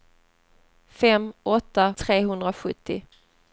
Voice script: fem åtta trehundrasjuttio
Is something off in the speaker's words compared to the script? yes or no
no